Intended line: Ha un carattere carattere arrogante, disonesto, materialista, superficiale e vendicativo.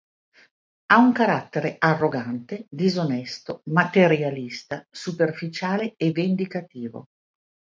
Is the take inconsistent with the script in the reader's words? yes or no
yes